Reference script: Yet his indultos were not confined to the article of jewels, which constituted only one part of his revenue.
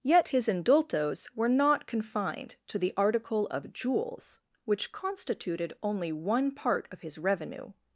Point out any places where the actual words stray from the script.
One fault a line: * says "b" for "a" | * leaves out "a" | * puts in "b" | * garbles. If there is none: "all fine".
all fine